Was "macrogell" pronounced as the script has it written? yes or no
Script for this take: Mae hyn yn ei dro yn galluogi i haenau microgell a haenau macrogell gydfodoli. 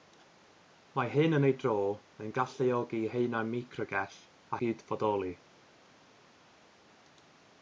no